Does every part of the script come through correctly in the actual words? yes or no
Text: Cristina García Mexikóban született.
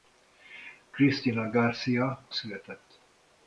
no